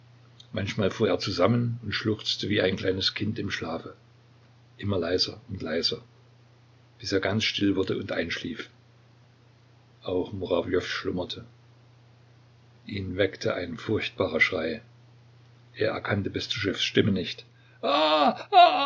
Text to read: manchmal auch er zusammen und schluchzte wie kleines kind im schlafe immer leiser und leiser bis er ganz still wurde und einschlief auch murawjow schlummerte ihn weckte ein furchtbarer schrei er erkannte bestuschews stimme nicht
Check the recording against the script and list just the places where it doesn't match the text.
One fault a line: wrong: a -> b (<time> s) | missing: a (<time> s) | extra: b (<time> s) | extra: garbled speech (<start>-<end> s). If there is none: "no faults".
wrong: auch -> fuhr (0.9 s)
extra: ein (2.6 s)